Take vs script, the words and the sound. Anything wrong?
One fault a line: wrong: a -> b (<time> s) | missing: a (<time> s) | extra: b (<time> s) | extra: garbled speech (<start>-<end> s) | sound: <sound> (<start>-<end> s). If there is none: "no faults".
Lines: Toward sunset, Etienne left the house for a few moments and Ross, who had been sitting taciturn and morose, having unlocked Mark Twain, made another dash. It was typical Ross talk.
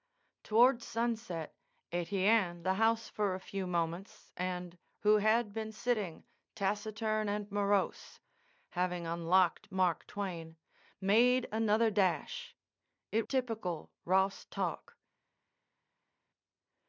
missing: left (2.6 s)
missing: Ross (4.8 s)
missing: was (13.3 s)